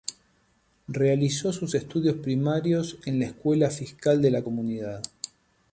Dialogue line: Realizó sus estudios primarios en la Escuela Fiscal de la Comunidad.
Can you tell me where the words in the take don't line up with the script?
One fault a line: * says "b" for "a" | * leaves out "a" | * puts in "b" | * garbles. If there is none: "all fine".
all fine